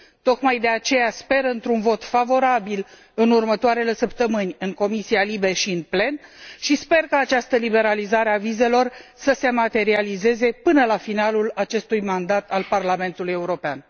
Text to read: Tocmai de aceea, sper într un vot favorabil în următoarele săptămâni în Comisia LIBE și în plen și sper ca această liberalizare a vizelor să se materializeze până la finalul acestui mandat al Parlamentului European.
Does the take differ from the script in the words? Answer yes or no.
no